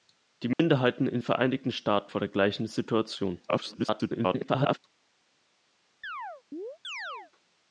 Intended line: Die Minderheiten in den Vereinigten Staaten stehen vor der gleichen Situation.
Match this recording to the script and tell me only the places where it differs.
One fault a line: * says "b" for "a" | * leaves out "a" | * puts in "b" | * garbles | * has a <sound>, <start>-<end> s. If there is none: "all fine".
* has a dropout, 0.5-0.6 s
* leaves out "den"
* leaves out "stehen"
* garbles
* has a chirp, 6.0-7.3 s